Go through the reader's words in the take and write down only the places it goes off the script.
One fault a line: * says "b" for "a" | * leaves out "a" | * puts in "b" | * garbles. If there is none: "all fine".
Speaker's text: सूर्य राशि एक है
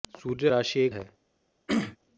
all fine